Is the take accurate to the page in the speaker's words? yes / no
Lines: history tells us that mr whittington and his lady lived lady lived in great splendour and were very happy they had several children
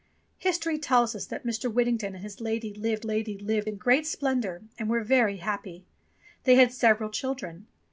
yes